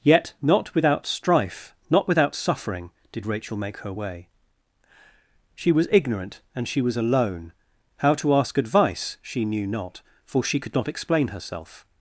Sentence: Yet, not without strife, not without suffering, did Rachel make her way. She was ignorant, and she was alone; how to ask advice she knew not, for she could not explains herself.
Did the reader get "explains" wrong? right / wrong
wrong